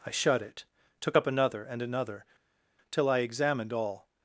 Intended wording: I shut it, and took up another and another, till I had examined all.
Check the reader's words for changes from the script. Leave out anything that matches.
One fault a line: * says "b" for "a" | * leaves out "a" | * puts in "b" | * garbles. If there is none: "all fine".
* leaves out "and"
* leaves out "had"